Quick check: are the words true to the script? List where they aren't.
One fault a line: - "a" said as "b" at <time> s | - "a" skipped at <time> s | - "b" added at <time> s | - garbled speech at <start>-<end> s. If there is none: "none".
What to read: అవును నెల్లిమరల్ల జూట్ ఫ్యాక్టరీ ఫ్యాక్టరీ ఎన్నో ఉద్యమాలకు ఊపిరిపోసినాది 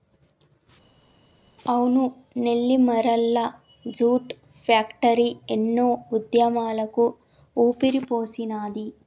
- "ఫ్యాక్టరీ" skipped at 5.3 s